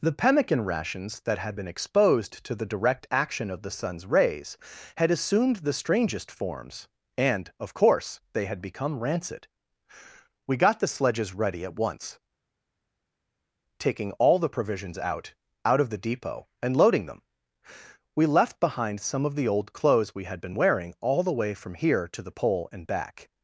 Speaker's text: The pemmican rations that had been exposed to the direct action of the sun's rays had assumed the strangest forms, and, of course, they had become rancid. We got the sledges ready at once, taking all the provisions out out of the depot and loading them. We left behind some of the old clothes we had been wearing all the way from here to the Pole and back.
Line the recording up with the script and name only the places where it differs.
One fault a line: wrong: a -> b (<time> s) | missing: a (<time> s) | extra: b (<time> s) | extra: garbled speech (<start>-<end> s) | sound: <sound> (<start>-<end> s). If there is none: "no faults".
no faults